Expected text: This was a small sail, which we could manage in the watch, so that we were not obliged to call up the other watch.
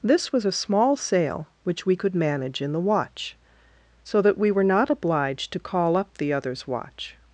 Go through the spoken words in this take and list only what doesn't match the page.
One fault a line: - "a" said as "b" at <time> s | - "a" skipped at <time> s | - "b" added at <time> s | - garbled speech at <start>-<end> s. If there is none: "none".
- "other" said as "others" at 6.3 s